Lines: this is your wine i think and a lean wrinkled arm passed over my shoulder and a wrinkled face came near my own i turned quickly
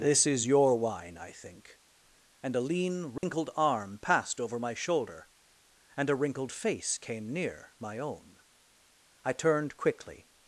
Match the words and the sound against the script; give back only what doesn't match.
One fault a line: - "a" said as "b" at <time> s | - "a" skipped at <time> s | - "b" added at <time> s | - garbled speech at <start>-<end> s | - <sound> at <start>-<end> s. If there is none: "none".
- dropout at 3.2-3.2 s